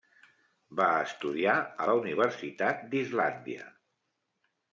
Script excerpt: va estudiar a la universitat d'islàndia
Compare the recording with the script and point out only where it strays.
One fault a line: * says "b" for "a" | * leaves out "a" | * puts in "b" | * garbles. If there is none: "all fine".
all fine